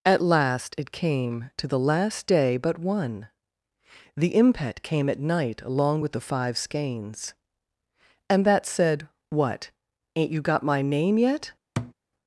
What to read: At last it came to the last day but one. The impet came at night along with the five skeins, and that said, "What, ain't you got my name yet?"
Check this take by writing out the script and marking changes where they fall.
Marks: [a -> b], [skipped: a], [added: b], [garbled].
At last it came to the last day but one. The impet came at night along with the five skeins, and that said, "What, ain't you got my name yet?"